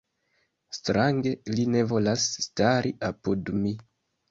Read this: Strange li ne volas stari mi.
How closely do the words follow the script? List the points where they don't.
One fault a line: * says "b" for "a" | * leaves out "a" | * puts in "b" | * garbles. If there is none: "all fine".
* puts in "apud"